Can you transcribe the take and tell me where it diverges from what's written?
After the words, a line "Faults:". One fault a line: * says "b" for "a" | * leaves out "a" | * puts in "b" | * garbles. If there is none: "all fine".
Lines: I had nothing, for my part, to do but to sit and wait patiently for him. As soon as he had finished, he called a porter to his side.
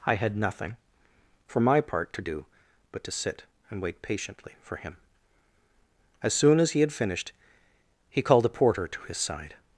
I had nothing, for my part, to do but to sit and wait patiently for him. As soon as he had finished, he called a porter to his side.
Faults:
all fine